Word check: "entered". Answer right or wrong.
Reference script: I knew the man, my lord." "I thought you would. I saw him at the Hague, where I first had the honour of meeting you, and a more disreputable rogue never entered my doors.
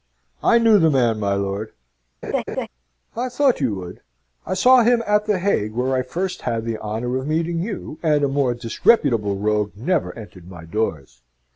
right